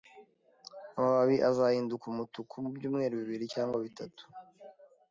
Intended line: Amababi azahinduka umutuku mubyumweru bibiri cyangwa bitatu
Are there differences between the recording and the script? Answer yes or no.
no